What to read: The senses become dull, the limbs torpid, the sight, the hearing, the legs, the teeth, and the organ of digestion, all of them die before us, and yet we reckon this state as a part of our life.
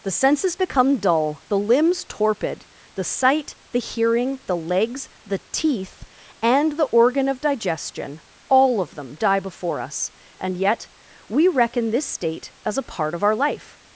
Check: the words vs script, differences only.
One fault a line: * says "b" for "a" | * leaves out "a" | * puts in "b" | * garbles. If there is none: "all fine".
all fine